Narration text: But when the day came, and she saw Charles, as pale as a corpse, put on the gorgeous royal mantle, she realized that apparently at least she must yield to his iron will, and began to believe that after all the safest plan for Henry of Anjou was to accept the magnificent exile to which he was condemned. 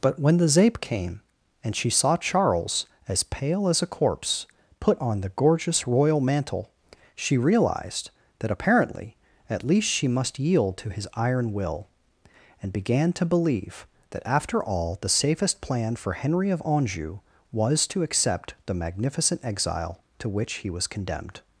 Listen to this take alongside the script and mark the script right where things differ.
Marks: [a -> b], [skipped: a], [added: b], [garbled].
But when the [day -> zape] came, and she saw Charles, as pale as a corpse, put on the gorgeous royal mantle, she realized that apparently at least she must yield to his iron will, and began to believe that after all the safest plan for Henry of Anjou was to accept the magnificent exile to which he was condemned.